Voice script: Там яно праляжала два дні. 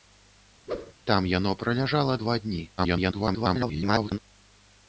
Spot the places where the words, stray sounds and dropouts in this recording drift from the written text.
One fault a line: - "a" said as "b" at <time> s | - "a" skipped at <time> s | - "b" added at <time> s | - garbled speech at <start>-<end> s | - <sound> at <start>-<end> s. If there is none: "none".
- whoosh at 0.7-0.9 s
- garbled speech at 2.8-4.2 s